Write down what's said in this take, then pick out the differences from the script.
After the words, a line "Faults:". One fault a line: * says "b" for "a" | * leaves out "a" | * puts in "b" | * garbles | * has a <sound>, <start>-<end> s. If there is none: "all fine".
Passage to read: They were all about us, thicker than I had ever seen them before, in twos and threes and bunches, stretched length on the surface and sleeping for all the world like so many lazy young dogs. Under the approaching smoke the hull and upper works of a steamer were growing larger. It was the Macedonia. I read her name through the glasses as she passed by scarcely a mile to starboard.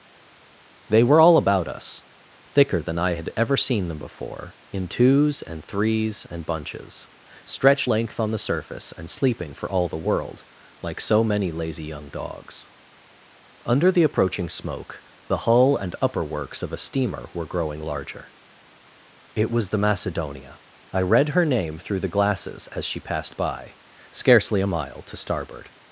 They were all about us, thicker than I had ever seen them before, in twos and threes and bunches, stretched length on the surface and sleeping for all the world like so many lazy young dogs. Under the approaching smoke the hull and upper works of a steamer were growing larger. It was the Macedonia. I read her name through the glasses as she passed by scarcely a mile to starboard.
Faults:
all fine